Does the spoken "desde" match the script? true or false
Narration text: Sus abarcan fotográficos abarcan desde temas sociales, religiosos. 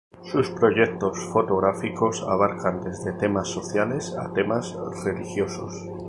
true